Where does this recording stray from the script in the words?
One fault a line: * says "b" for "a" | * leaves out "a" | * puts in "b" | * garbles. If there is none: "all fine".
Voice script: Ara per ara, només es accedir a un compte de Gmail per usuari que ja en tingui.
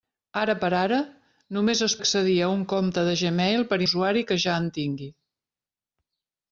all fine